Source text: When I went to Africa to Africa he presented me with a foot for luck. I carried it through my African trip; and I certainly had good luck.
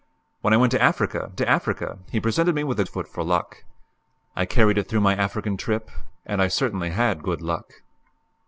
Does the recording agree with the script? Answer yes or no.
yes